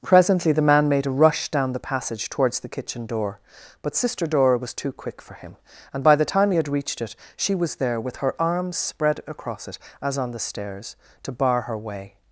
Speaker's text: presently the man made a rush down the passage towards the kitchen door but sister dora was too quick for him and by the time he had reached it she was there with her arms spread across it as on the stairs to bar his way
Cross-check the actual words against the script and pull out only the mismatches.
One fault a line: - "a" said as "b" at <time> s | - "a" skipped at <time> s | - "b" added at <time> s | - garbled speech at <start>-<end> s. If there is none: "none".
- "his" said as "her" at 11.6 s